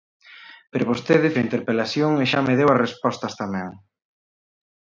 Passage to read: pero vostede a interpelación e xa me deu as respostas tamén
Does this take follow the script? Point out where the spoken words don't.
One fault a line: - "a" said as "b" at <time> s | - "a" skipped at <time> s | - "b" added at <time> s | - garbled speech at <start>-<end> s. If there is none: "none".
none